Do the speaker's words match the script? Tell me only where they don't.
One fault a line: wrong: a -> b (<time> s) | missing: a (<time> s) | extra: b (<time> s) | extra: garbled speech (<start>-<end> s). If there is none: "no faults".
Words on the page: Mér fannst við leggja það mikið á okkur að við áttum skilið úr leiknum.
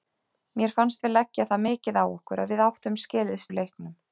no faults